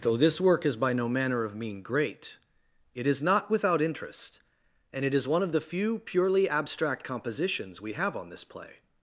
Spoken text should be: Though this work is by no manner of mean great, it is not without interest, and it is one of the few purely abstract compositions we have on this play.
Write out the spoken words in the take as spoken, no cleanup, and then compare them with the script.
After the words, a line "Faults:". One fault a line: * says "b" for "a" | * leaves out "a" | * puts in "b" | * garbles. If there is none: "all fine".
Though this work is by no manner of mean great, it is not without interest, and it is one of the few purely abstract compositions we have on this play.
Faults:
all fine